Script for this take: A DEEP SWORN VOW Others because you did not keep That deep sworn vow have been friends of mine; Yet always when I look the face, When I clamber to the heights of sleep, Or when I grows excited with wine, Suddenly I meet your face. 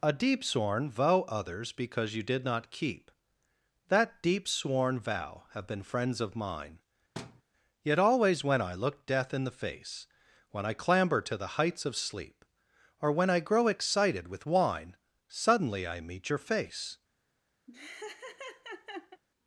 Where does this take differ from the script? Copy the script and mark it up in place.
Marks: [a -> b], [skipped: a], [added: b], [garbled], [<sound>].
A DEEP SWORN VOW Others because you did not keep That deep sworn vow have been friends of mine; [thud] Yet always when I look [added: death in] the face, When I clamber to the heights of sleep, Or when I [grows -> grow] excited with wine, Suddenly I meet your face. [laugh]